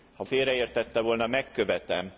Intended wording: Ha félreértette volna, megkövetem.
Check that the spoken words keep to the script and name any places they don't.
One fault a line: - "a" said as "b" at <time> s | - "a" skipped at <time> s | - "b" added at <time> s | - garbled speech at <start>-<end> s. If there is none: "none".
none